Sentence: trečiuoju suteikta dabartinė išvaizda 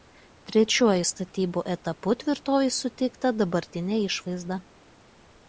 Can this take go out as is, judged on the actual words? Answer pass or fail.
fail